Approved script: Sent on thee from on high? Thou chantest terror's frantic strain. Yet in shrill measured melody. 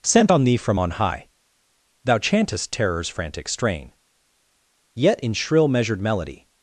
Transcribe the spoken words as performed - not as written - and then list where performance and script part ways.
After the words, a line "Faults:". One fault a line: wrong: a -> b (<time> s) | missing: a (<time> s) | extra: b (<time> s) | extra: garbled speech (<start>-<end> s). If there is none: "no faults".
Sent on thee from on high? Thou chantest terror's frantic strain. Yet in shrill measured melody.
Faults:
no faults